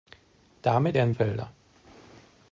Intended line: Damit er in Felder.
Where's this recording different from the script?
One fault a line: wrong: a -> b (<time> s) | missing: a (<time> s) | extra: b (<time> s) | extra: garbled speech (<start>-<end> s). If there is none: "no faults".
no faults